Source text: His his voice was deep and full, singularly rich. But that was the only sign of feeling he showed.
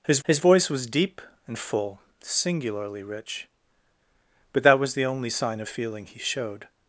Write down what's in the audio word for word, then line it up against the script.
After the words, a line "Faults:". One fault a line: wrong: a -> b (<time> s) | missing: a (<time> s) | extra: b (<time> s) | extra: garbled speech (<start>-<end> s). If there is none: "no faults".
His his voice was deep and full, singularly rich. But that was the only sign of feeling he showed.
Faults:
no faults